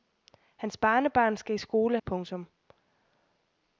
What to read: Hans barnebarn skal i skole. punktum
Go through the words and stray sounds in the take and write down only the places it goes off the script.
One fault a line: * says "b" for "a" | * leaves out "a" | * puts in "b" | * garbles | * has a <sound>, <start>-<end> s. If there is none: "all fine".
all fine